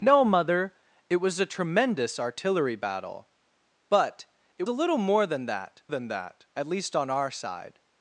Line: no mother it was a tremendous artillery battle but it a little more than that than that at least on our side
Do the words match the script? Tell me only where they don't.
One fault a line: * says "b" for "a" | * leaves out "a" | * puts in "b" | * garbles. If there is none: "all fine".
all fine